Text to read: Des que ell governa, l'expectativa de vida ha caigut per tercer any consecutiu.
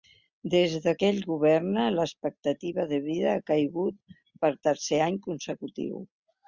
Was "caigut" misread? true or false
false